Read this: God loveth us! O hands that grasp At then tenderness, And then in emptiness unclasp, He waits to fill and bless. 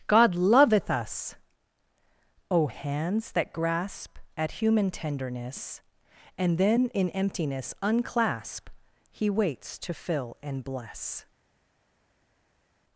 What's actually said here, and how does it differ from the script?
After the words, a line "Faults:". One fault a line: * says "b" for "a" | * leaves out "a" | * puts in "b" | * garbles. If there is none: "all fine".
God loveth us! O hands that grasp At human tenderness, And then in emptiness unclasp, He waits to fill and bless.
Faults:
* says "human" for "then"